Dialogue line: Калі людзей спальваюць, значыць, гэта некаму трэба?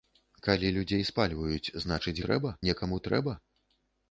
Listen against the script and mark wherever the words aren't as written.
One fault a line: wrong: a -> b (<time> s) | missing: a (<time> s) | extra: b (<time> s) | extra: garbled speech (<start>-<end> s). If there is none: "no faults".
wrong: гэта -> трэба (2.3 s)